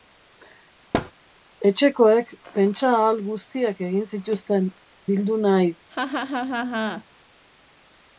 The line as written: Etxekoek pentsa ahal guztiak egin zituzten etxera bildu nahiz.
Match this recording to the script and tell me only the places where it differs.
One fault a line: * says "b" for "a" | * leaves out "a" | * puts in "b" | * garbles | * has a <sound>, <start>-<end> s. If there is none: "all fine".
* has a thud, 0.9-1.1 s
* leaves out "etxera"
* has a laugh, 5.9-7.0 s